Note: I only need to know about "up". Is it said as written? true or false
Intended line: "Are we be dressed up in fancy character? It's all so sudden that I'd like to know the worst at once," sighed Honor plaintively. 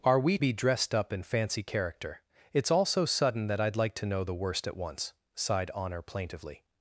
true